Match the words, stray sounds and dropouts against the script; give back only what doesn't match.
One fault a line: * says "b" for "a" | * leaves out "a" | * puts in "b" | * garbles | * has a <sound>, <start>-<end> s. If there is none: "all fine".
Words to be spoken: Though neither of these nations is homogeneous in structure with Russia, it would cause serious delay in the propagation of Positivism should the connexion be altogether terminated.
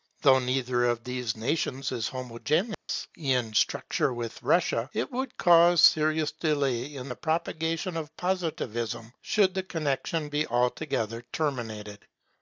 * has a dropout, 2.7-2.9 s